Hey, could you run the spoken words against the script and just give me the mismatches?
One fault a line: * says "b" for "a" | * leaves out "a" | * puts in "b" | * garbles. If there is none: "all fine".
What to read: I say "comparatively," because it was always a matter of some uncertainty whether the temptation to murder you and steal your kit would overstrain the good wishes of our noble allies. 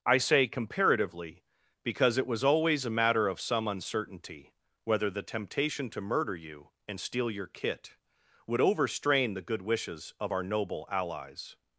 all fine